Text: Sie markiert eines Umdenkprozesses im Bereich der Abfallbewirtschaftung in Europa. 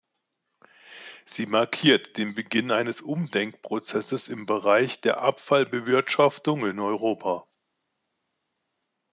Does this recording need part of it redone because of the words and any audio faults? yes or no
yes